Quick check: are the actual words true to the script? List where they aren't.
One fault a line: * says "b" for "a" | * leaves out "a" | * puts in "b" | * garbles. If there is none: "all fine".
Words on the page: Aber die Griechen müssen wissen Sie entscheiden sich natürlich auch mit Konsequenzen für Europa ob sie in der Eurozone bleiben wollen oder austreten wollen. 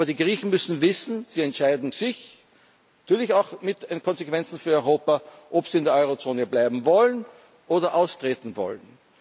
all fine